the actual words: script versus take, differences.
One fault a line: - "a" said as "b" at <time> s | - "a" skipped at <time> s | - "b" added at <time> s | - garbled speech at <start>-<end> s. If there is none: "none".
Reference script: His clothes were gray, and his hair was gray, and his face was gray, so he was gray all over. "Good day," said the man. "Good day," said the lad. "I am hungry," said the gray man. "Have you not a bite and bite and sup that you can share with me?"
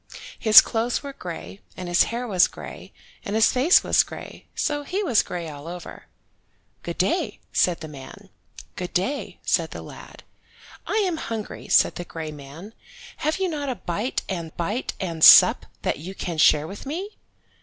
none